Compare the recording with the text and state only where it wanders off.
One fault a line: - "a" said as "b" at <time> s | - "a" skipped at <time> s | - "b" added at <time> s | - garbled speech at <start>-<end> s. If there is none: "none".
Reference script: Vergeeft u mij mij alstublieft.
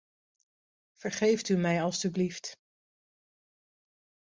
- "mij" skipped at 1.8 s